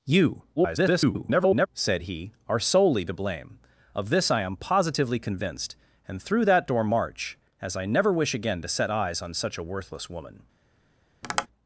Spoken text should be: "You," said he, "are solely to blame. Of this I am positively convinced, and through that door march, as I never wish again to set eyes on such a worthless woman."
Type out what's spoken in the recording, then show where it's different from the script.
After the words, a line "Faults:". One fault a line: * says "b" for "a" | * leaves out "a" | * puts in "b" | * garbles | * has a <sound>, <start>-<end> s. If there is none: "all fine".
"You," [garbled] said he, "are solely to blame. Of this I am positively convinced, and through that door march, as I never wish again to set eyes on such a worthless woman."
Faults:
* garbles
* has a tap, 11.2-11.5 s